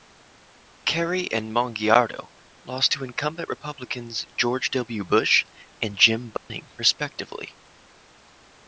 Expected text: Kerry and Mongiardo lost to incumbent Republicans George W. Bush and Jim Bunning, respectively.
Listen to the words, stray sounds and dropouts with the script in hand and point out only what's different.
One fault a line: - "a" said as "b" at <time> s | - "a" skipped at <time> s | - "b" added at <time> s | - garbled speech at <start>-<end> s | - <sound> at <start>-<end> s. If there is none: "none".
- dropout at 6.4-6.5 s